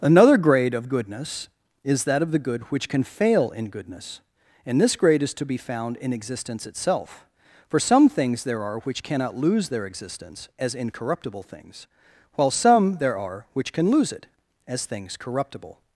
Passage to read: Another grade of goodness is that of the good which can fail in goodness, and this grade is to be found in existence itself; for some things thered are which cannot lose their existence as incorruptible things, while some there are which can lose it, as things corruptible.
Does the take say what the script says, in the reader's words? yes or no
no